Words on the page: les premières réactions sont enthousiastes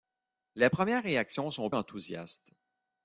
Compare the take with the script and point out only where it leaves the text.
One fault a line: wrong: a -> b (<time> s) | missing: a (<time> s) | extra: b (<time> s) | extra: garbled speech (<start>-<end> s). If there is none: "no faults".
no faults